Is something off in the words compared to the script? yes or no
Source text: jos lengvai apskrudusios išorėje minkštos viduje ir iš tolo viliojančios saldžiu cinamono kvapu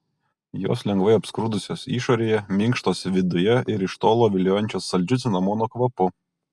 no